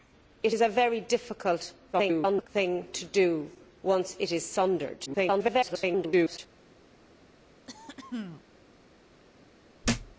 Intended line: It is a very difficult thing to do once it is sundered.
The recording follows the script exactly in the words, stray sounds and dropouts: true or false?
false